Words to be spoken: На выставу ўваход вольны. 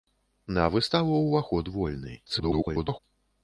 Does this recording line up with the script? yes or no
no